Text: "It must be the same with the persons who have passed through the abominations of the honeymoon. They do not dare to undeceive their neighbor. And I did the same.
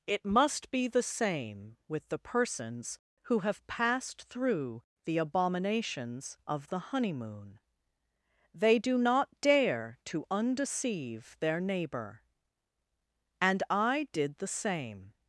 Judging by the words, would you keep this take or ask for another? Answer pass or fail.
pass